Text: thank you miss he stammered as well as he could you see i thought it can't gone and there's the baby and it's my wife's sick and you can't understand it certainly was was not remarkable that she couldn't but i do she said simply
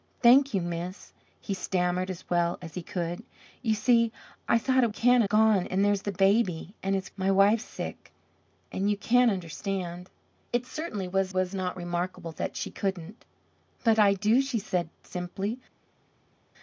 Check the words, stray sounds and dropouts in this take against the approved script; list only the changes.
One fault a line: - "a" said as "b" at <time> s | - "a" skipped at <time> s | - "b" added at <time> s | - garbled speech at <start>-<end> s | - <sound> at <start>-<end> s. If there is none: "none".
none